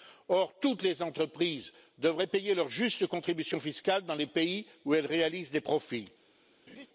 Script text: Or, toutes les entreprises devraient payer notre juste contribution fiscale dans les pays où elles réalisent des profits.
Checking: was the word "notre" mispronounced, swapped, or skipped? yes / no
yes